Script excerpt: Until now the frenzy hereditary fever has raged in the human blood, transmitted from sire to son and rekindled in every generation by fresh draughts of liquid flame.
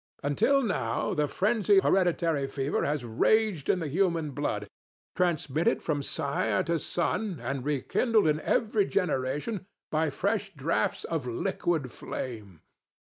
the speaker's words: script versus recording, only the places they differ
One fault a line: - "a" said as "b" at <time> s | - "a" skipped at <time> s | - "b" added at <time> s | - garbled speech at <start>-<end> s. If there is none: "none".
none